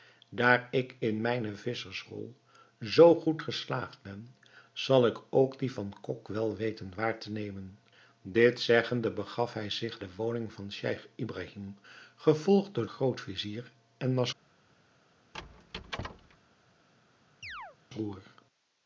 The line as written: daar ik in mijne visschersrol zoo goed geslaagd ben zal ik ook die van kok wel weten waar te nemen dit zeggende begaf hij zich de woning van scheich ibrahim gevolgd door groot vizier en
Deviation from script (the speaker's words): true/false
false